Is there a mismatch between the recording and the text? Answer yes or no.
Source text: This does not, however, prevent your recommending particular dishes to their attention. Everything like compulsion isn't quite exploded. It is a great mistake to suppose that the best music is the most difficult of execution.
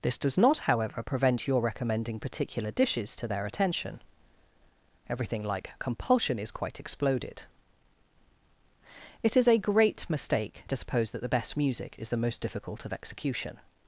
yes